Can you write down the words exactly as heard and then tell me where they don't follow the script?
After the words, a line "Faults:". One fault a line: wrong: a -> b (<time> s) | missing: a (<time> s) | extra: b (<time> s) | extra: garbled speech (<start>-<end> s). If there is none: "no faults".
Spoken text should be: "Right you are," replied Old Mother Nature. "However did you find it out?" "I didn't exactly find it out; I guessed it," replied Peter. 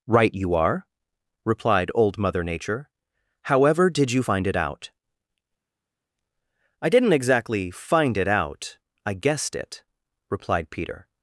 "Right you are," replied Old Mother Nature. "However did you find it out?" "I didn't exactly find it out; I guessed it," replied Peter.
Faults:
no faults